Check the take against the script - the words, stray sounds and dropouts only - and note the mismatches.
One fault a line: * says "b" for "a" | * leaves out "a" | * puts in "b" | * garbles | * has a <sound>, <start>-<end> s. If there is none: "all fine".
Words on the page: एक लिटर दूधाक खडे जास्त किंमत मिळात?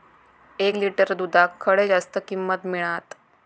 all fine